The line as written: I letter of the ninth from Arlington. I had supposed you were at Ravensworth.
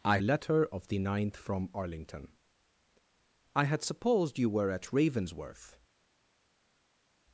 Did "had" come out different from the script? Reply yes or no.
no